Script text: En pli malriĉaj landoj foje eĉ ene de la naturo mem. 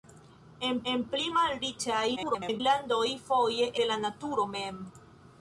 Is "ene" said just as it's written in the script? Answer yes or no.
no